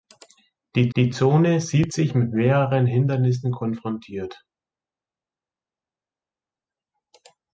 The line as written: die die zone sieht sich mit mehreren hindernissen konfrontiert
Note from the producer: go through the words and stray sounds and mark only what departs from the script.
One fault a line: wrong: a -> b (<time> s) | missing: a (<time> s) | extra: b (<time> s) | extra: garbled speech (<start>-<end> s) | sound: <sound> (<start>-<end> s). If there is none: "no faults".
no faults